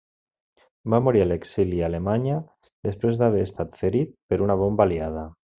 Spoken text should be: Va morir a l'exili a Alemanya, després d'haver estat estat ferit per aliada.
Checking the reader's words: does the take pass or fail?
fail